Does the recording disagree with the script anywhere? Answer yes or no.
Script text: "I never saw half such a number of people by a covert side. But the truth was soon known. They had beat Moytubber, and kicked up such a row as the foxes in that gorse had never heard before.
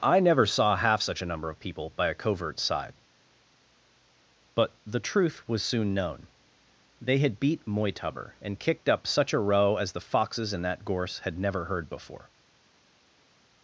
no